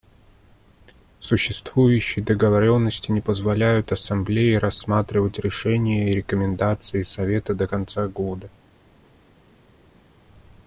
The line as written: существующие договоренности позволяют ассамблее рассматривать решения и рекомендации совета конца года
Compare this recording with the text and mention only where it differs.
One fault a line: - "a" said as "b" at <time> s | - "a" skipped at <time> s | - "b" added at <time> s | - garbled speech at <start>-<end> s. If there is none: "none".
- "не" added at 3.1 s
- "до" added at 7.5 s